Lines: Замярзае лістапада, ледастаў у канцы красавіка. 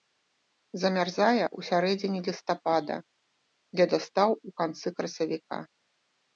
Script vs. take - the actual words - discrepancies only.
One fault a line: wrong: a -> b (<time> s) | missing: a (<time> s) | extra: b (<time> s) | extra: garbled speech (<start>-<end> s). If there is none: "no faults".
extra: ў сярэдзіне (1.5 s)